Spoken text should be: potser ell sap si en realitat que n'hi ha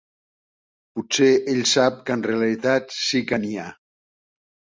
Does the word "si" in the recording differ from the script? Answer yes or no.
yes